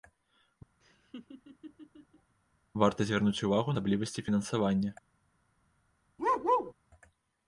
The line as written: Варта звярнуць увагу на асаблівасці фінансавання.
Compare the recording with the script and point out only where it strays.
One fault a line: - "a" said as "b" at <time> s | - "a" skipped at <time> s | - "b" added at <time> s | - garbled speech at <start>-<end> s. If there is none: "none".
- "на" skipped at 3.8 s